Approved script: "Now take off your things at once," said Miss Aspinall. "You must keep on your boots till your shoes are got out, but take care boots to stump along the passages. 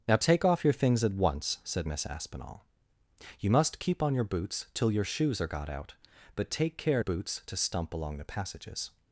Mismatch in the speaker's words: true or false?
false